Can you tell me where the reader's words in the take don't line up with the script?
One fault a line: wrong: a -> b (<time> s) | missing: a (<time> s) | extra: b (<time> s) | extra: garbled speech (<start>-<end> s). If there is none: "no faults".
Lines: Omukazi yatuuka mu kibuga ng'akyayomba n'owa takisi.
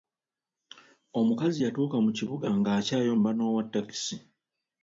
no faults